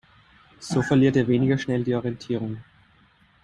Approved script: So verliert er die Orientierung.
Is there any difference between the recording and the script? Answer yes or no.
yes